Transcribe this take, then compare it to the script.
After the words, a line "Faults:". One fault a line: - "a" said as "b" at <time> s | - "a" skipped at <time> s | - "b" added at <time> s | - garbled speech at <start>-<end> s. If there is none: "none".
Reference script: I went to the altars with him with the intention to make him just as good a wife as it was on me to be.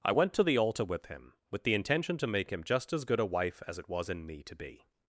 I went to the altar with him with the intention to make him just as good a wife as it was in me to be.
Faults:
- "altars" said as "altar" at 0.6 s
- "on" said as "in" at 4.1 s